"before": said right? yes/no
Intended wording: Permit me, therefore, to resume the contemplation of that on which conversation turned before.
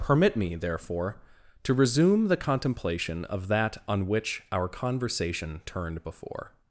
yes